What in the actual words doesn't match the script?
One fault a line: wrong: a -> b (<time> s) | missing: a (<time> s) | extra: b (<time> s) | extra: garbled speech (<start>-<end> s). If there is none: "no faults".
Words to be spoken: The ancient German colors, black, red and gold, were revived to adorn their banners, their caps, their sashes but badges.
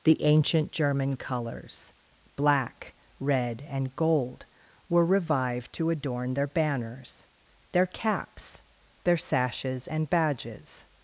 wrong: but -> and (9.9 s)